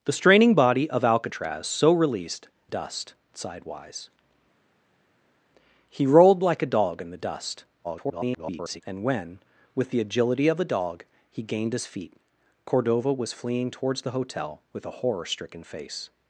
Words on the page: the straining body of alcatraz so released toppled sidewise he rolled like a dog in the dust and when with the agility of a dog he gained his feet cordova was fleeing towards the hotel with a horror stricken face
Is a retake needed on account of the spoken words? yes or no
yes